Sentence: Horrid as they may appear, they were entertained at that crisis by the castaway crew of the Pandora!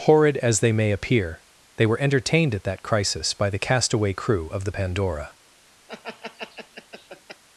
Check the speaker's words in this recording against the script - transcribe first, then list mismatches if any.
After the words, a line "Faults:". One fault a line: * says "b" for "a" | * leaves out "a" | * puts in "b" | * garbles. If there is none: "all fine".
Horrid as they may appear, they were entertained at that crisis by the castaway crew of the Pandora!
Faults:
all fine